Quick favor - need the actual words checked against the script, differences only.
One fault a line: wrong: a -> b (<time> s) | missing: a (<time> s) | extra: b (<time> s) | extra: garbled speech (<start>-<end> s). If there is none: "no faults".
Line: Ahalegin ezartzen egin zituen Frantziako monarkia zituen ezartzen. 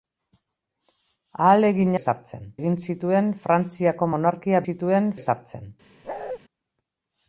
no faults